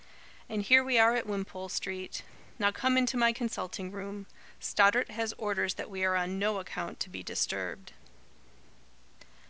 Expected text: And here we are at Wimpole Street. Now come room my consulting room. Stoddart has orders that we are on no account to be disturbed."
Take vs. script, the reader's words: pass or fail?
fail